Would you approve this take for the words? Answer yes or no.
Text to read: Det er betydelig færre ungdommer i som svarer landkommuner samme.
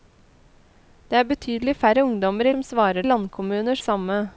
yes